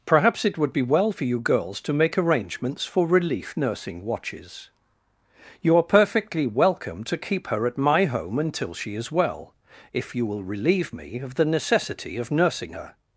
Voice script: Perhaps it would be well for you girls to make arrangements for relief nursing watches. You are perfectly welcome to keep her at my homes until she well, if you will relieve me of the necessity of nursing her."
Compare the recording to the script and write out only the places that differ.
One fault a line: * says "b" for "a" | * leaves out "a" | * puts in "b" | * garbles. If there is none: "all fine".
* says "home" for "homes"
* puts in "is"